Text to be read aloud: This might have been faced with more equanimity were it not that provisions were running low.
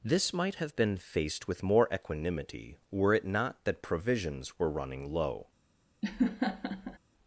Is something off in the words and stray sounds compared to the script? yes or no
yes